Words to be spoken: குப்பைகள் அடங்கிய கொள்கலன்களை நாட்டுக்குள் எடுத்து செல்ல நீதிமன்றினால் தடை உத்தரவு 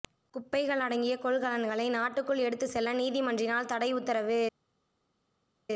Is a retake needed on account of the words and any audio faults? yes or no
no